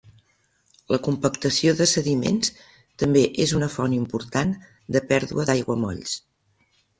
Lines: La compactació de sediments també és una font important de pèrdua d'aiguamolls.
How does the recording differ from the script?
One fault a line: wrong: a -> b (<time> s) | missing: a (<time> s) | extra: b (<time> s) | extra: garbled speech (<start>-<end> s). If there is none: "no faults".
no faults